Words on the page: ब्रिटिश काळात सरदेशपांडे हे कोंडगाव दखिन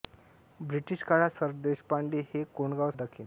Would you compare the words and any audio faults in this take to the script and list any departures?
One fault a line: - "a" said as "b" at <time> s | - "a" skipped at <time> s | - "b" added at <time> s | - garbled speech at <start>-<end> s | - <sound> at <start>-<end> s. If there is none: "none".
none